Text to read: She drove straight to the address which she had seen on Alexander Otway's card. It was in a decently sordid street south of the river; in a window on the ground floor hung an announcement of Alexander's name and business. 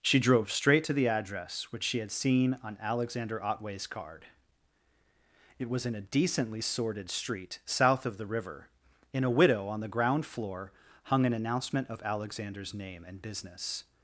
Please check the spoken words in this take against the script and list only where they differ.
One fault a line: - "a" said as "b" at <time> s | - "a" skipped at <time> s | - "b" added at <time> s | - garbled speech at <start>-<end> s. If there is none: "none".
- "window" said as "widow" at 9.3 s